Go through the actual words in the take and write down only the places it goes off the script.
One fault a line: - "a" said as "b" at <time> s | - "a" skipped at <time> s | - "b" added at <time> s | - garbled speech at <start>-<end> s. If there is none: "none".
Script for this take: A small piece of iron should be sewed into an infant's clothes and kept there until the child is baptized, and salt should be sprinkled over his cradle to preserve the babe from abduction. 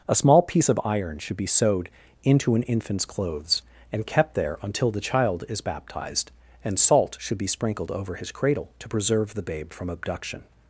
none